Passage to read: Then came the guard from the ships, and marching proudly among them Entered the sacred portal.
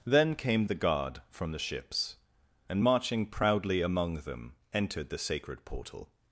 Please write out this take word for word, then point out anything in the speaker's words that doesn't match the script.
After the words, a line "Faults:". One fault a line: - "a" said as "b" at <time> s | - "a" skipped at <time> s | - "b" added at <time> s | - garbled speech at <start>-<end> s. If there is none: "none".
Then came the guard from the ships, and marching proudly among them Entered the sacred portal.
Faults:
none